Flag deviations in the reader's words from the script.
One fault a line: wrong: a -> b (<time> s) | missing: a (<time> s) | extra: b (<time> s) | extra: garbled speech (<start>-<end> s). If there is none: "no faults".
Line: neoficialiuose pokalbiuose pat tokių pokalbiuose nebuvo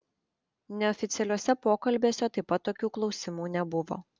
extra: taip (2.4 s)
wrong: pokalbiuose -> klausimų (3.0 s)